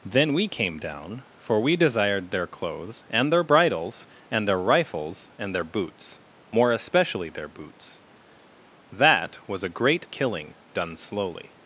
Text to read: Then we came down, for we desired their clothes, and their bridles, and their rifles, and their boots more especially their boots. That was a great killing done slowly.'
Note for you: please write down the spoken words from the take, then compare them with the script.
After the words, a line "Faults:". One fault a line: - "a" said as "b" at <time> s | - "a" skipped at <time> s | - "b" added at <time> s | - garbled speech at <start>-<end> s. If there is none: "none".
Then we came down, for we desired their clothes, and their bridles, and their rifles, and their boots more especially their boots. That was a great killing done slowly.'
Faults:
none